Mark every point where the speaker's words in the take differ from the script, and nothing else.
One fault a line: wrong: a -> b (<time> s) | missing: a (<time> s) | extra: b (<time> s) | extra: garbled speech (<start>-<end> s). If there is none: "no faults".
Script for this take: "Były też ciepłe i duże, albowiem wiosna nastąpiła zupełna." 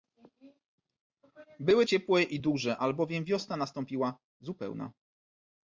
missing: też (1.9 s)